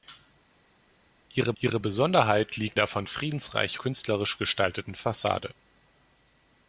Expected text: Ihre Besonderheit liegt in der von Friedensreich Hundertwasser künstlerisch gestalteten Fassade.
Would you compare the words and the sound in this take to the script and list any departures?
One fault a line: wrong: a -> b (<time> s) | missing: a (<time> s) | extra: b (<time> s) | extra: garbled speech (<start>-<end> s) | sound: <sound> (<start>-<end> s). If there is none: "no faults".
extra: ihre (1.6 s)
missing: in (2.8 s)
missing: Hundertwasser (3.8 s)